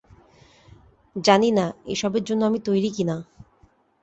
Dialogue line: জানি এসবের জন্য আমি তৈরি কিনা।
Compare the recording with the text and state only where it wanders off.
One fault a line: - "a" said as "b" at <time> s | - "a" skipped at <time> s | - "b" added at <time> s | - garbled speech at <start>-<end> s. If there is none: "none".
- "না" added at 1.5 s